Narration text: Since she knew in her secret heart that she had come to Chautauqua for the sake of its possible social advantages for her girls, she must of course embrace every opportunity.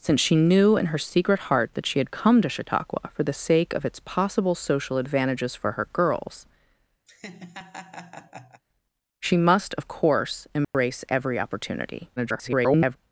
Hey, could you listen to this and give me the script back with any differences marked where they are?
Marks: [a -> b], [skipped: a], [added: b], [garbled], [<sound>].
Since she knew in her secret heart that she had come to Chautauqua for the sake of its possible social advantages for her girls, [laugh] she must of course embrace [dropout] every opportunity. [garbled]